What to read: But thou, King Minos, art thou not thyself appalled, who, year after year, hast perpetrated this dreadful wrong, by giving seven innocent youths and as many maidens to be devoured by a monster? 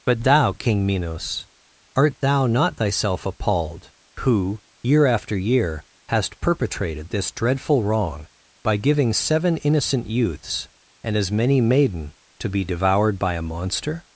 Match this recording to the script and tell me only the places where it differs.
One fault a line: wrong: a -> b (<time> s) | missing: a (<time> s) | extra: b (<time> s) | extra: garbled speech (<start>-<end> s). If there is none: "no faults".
wrong: maidens -> maiden (11.6 s)